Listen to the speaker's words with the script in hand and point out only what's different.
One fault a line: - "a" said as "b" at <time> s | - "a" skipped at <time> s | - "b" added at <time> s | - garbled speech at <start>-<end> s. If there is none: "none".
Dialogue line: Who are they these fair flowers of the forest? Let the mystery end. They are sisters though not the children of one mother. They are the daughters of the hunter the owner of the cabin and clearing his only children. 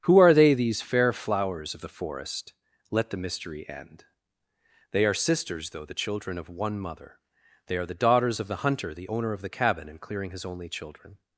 - "not" skipped at 5.8 s